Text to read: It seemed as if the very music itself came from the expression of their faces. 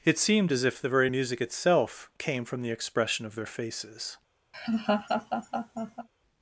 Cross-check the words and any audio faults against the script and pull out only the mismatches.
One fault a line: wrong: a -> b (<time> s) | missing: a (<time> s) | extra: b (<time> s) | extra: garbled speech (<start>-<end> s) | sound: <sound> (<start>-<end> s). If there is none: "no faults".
sound: laugh (4.5-6.1 s)